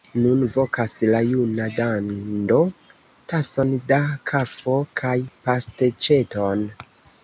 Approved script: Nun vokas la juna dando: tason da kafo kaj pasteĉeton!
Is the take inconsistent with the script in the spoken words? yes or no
no